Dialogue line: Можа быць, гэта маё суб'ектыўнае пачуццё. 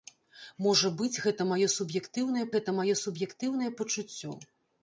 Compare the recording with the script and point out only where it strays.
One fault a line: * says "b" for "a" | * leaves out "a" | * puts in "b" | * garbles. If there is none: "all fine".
* puts in "гэта маё суб'ектыўнае"